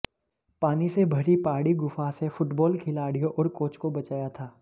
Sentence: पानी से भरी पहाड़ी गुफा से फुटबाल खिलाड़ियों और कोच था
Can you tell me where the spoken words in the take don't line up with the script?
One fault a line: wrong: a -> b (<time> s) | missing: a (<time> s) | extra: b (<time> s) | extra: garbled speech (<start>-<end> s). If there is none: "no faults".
extra: को बचाया (3.8 s)